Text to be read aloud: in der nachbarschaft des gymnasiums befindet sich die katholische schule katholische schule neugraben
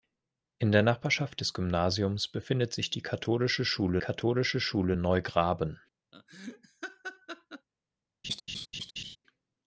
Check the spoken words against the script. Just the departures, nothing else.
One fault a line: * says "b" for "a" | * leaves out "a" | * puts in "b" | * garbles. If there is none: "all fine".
all fine